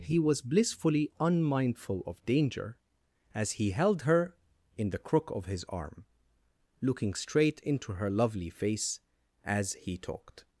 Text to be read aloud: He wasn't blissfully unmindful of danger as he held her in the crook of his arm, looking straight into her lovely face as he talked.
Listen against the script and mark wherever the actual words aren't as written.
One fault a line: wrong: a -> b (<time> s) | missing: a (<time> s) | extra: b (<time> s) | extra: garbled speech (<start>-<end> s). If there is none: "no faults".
wrong: wasn't -> was (0.2 s)